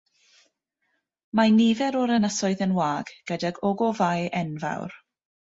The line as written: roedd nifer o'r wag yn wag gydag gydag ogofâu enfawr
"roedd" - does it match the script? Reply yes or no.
no